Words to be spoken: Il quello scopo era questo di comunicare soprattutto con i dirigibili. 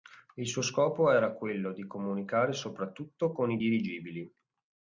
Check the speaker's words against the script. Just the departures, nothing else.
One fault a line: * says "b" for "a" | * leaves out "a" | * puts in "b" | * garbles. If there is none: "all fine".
* says "suo" for "quello"
* says "quello" for "questo"